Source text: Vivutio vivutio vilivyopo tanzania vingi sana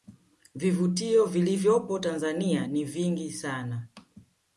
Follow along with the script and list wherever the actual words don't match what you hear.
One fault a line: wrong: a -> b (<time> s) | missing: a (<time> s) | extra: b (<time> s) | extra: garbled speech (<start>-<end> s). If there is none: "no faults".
missing: vivutio (1.2 s)
extra: ni (2.7 s)